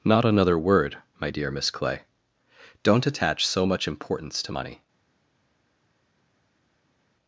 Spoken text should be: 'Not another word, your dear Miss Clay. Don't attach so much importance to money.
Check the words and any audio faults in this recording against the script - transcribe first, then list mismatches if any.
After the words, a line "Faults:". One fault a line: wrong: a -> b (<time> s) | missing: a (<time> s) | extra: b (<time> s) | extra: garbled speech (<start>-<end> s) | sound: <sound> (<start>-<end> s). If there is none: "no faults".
'Not another word, my dear Miss Clay. Don't attach so much importance to money.
Faults:
wrong: your -> my (1.2 s)